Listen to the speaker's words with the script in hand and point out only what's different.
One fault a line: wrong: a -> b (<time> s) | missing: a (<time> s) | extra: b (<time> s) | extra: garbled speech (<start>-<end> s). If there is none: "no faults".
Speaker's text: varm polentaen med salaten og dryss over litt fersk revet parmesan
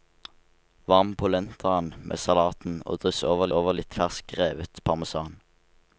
extra: over (3.6 s)